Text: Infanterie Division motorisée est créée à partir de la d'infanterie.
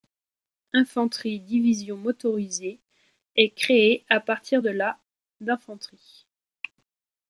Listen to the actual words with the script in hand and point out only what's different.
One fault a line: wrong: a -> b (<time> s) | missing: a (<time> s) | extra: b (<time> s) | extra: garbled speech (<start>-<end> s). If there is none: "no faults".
no faults